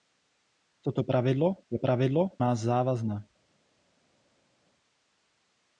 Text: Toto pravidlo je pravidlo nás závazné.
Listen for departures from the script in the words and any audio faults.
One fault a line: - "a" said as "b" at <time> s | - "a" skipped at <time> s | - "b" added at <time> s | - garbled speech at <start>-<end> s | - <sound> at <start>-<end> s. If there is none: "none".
none